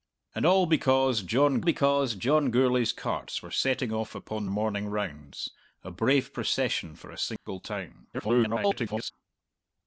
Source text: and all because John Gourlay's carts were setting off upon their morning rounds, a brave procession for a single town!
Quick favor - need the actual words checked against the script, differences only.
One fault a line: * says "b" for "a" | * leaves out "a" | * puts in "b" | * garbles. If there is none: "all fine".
* puts in "because John"
* leaves out "their"
* garbles